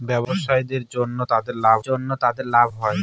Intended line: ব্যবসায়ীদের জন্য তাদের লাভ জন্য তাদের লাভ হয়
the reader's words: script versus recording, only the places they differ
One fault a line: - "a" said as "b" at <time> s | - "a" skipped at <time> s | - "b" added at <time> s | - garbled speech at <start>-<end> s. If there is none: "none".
none